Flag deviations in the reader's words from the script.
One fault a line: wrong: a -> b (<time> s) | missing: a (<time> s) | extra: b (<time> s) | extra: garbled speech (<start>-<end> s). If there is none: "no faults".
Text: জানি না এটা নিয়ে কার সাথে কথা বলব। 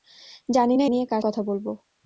missing: এটা (0.9 s)
missing: সাথে (1.2 s)